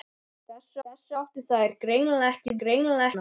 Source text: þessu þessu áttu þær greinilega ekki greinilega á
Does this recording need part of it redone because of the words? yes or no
no